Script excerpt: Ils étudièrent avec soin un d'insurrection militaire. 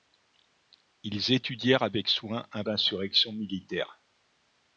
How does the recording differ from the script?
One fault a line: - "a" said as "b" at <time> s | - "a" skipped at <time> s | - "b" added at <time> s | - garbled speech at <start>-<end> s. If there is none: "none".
none